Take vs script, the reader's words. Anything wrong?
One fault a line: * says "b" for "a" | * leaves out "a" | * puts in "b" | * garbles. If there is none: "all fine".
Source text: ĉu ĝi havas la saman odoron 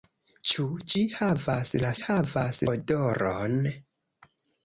* says "havas" for "saman"